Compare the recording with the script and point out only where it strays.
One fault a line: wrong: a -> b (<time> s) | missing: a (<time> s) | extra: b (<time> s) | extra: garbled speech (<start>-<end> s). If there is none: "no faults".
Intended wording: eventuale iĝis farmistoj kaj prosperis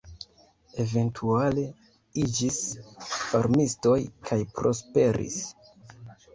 no faults